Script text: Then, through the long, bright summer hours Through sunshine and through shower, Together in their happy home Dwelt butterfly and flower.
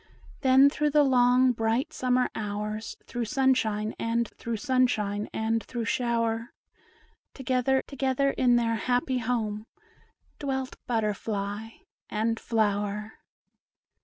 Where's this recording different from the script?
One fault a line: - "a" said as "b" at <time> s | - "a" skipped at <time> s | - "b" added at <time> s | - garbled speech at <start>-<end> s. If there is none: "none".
- "sunshine and through" added at 4.6 s
- "Together" added at 7.9 s